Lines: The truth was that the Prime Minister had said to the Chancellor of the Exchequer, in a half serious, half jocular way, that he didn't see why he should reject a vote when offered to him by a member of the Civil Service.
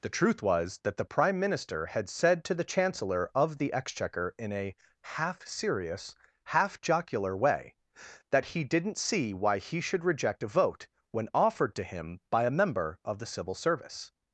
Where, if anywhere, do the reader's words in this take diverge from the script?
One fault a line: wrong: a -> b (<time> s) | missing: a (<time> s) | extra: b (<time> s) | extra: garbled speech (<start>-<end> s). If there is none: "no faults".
no faults